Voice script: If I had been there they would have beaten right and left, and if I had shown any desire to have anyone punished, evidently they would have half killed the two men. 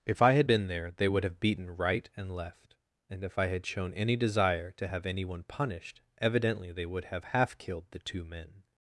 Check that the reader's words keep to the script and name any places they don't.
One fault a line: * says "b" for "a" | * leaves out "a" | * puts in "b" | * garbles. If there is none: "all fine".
all fine